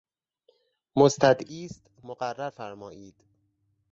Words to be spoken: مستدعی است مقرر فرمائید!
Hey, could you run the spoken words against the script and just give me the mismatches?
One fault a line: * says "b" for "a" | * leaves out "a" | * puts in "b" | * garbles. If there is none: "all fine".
all fine